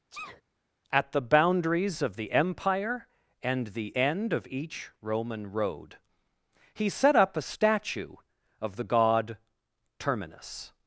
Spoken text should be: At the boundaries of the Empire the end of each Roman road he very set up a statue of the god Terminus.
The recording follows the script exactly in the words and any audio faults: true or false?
false